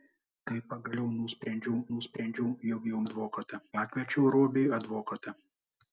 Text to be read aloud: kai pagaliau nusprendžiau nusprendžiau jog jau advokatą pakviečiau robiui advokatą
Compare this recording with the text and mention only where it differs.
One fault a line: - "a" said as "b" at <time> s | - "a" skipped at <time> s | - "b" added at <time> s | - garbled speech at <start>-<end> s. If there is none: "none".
none